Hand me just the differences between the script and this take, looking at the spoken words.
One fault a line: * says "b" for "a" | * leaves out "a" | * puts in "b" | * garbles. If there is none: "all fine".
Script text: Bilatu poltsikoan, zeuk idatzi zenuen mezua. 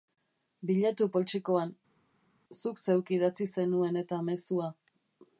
* puts in "zuk"
* puts in "eta"